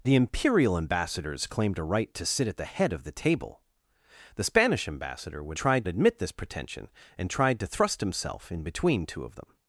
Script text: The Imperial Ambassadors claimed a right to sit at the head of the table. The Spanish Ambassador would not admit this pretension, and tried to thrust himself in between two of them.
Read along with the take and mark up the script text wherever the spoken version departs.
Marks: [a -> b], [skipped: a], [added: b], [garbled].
The Imperial Ambassadors claimed a right to sit at the head of the table. The Spanish Ambassador would [not -> tried] admit this pretension, and tried to thrust himself in between two of them.